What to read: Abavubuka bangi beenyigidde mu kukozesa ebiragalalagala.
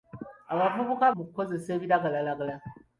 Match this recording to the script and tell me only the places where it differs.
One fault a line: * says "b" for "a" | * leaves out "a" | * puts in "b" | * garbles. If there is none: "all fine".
* leaves out "bangi beenyigidde"